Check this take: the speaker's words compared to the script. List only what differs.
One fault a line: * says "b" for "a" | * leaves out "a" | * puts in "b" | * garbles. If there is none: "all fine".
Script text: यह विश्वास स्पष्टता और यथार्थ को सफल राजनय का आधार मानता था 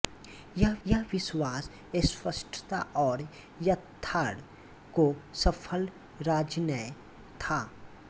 * puts in "यह"
* leaves out "का आधार मानता"